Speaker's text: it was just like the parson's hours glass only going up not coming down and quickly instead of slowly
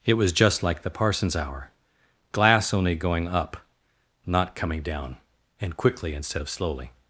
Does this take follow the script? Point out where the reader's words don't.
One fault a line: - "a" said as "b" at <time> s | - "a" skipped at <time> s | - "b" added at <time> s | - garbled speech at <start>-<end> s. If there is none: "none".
- "hours" said as "hour" at 1.4 s